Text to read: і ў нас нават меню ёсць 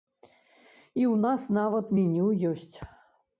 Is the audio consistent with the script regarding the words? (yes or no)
yes